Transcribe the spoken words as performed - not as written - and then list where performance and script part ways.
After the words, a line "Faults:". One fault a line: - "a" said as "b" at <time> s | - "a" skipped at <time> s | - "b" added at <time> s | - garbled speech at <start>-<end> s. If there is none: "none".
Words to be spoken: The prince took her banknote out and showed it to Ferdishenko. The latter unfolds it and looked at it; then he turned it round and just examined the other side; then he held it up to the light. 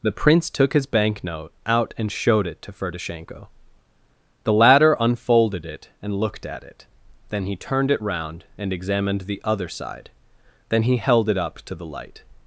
The prince took his banknote out and showed it to Ferdishenko. The latter unfolded it and looked at it; then he turned it round and examined the other side; then he held it up to the light.
Faults:
- "her" said as "his" at 0.7 s
- "unfolds" said as "unfolded" at 5.0 s
- "just" skipped at 8.7 s